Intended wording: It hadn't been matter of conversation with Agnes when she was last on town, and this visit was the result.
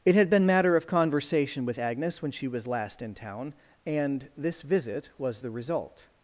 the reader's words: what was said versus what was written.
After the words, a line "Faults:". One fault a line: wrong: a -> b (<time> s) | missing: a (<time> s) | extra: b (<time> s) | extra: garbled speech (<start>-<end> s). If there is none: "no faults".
It had been matter of conversation with Agnes when she was last in town, and this visit was the result.
Faults:
wrong: hadn't -> had (0.1 s)
wrong: on -> in (3.0 s)